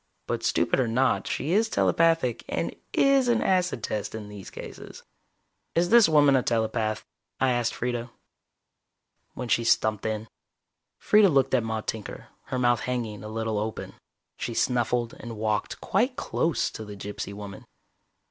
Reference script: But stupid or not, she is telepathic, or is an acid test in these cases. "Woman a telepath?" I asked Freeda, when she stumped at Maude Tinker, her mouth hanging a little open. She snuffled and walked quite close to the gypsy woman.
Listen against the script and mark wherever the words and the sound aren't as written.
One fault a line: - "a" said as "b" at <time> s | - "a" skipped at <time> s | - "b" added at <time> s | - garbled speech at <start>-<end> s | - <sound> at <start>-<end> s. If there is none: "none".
- "or" said as "and" at 2.5 s
- "Is this" added at 5.7 s
- "in Freeda looked" added at 10.1 s